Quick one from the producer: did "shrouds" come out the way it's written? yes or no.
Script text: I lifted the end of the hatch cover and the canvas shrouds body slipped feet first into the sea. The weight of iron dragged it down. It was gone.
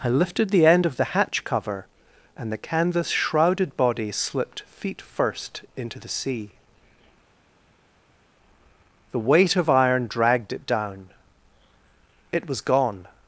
no